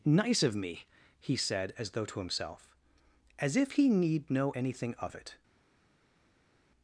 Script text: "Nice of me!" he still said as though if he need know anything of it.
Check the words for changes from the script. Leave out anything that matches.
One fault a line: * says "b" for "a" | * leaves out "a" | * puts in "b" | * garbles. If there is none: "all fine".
* leaves out "still"
* puts in "to himself as"